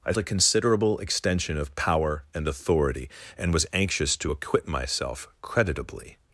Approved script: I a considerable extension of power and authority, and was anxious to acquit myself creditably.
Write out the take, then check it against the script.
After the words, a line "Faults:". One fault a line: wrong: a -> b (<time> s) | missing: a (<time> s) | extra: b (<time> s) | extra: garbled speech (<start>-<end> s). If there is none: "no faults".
I a considerable extension of power and authority, and was anxious to acquit myself creditably.
Faults:
no faults